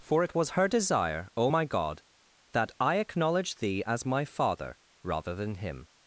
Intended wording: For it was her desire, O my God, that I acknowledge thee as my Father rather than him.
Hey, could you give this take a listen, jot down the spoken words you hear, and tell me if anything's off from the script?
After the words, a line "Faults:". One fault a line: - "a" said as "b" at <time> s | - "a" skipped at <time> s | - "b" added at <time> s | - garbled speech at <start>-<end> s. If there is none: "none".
For it was her desire, O my God, that I acknowledge thee as my Father rather than him.
Faults:
none